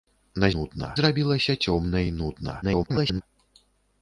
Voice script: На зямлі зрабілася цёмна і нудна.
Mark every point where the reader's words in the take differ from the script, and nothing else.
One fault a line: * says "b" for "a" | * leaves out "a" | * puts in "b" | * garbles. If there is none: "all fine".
* says "нудна" for "зямлі"
* garbles